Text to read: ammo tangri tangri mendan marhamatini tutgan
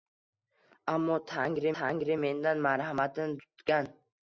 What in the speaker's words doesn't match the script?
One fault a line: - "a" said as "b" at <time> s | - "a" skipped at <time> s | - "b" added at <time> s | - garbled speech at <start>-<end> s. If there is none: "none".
none